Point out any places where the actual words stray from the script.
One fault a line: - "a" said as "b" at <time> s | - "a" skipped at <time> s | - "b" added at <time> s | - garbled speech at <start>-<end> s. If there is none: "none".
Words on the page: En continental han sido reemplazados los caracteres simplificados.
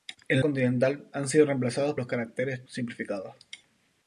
none